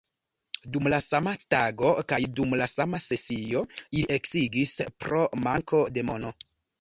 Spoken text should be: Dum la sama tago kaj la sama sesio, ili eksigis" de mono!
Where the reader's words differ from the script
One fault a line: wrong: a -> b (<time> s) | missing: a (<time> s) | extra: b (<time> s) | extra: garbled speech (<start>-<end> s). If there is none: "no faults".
extra: dum (2.4 s)
extra: pro manko (5.1 s)